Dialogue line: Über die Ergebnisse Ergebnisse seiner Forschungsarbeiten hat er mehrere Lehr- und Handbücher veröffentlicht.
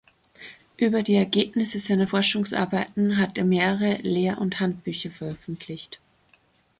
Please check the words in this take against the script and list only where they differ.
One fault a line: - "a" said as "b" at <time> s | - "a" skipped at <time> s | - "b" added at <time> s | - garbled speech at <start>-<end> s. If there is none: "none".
- "Ergebnisse" skipped at 1.8 s